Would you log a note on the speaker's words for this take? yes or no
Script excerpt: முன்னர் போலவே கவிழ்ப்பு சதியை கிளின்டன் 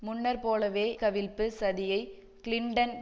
no